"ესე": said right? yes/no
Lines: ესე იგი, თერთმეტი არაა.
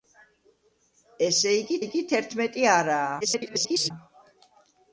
yes